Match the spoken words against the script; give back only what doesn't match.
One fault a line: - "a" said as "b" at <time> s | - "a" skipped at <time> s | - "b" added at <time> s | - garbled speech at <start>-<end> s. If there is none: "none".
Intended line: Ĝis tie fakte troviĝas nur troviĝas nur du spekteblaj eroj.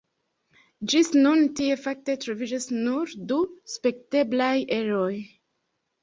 - "nun" added at 1.2 s
- "troviĝas nur" skipped at 3.1 s